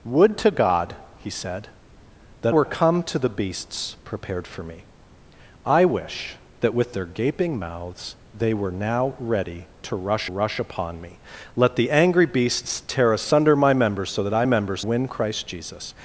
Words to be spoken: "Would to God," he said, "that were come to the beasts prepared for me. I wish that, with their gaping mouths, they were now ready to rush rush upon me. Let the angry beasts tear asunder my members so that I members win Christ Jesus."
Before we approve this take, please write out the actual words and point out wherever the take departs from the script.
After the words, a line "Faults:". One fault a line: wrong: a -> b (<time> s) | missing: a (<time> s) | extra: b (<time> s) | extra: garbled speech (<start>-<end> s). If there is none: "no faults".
"Would to God," he said, "that were come to the beasts prepared for me. I wish that, with their gaping mouths, they were now ready to rush rush upon me. Let the angry beasts tear asunder my members so that I members win Christ Jesus."
Faults:
no faults